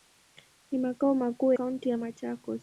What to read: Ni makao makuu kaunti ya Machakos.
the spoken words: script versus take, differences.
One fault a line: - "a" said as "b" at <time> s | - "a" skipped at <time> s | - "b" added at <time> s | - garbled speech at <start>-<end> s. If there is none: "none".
none